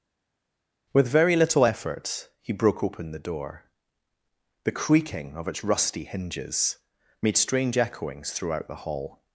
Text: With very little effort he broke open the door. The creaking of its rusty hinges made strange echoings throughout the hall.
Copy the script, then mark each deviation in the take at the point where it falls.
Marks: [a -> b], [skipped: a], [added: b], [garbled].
With very little effort he broke open the door. The creaking of its rusty hinges made strange echoings throughout the hall.